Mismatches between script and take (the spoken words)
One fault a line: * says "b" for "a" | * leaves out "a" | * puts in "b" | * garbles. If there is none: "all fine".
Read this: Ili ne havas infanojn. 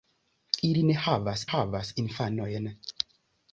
* puts in "havas"